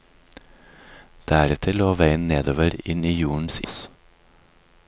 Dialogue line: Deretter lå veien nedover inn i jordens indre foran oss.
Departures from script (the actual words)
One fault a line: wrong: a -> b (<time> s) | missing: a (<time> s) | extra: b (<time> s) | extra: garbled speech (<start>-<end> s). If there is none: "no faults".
missing: indre foran (3.6 s)